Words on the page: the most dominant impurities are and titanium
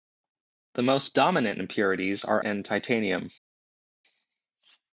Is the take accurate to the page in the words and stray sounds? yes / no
yes